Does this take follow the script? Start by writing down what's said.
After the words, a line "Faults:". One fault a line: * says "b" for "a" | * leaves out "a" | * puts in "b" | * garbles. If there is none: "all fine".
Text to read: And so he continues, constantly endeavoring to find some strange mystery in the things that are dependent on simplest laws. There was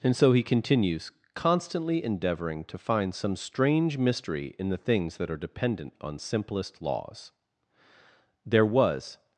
And so he continues, constantly endeavoring to find some strange mystery in the things that are dependent on simplest laws. There was
Faults:
all fine